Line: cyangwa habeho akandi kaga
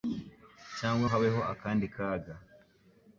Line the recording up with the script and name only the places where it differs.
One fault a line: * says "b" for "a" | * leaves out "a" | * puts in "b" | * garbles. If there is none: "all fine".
all fine